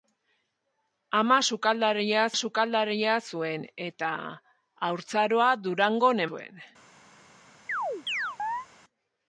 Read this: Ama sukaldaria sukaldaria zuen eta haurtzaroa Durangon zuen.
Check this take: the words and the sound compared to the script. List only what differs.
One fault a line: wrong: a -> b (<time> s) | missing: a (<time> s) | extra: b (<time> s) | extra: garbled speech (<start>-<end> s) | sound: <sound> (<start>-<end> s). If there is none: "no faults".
sound: chirp (7.7-8.7 s)